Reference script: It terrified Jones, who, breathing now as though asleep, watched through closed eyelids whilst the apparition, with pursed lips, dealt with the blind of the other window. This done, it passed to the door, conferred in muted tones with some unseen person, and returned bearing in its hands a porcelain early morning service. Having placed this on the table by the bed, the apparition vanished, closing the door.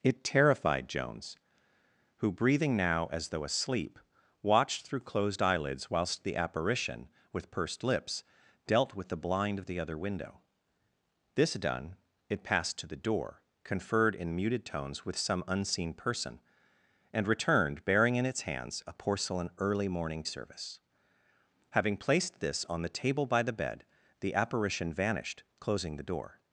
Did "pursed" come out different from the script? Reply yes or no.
no